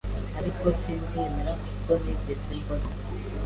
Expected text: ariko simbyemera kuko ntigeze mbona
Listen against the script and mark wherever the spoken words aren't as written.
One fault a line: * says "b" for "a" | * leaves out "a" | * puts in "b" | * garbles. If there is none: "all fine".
all fine